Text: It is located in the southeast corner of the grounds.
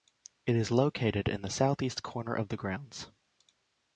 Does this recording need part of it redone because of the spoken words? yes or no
no